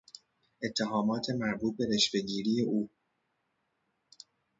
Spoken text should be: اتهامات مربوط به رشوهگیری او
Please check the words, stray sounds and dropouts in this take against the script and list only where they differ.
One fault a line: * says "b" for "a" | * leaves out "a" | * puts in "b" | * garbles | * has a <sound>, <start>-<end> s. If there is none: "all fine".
all fine